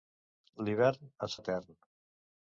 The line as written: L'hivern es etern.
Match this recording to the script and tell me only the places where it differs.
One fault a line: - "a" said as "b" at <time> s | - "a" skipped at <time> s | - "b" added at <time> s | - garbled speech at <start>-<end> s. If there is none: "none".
none